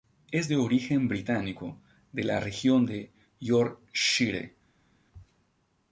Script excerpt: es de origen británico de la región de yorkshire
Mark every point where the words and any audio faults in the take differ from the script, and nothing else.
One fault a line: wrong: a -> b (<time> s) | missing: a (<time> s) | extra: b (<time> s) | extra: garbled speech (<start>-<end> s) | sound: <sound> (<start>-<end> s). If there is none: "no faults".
no faults